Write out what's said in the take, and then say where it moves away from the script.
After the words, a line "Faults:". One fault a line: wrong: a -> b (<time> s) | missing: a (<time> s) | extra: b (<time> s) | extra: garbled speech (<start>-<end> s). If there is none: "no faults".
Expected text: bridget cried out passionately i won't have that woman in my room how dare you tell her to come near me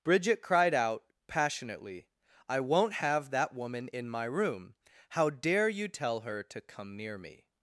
bridget cried out passionately i won't have that woman in my room how dare you tell her to come near me
Faults:
no faults